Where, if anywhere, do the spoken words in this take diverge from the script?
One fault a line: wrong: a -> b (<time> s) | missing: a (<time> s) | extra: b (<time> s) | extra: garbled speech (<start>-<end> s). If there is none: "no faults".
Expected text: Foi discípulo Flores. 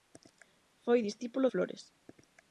no faults